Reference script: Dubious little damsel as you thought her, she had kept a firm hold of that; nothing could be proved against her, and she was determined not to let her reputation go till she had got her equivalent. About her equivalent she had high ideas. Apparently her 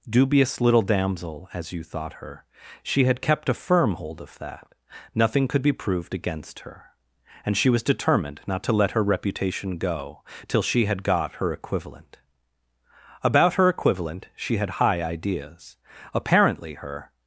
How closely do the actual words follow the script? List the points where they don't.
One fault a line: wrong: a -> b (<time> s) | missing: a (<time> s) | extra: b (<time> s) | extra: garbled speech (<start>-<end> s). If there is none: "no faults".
no faults